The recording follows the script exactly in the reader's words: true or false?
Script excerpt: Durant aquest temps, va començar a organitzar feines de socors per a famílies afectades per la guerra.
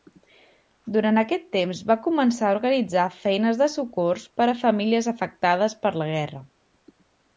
true